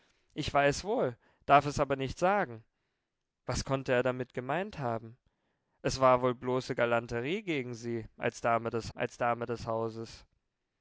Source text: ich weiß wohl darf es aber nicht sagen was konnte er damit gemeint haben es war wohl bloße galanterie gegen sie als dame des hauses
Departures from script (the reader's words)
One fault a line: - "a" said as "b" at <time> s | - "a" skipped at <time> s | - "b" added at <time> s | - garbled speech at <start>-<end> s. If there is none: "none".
- "als dame des" added at 8.9 s